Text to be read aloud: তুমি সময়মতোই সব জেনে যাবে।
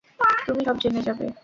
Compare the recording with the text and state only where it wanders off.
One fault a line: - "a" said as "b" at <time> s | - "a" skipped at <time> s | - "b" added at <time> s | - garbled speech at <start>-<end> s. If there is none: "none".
- "সময়মতোই" skipped at 0.6 s